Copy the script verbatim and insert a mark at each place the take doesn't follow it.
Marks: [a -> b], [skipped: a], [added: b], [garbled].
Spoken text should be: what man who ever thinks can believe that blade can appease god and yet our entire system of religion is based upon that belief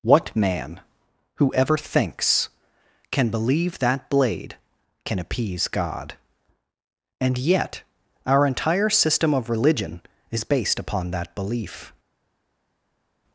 what man who ever thinks can believe that blade can appease god and yet our entire system of religion is based upon that belief